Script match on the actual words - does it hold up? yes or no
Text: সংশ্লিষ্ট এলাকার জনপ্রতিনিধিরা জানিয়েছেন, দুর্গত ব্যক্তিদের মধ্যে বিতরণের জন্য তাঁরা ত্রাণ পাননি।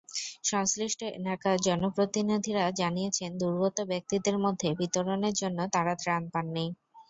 yes